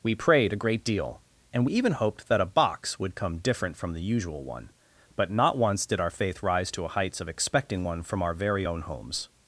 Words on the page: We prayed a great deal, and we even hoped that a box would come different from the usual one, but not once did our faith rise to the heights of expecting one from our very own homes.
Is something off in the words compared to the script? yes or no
yes